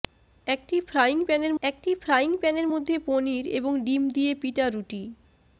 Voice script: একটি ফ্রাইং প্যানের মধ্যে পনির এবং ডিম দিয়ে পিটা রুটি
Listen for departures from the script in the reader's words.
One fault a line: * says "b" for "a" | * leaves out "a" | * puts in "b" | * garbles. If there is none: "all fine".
* puts in "একটি ফ্রাইং প্যানের"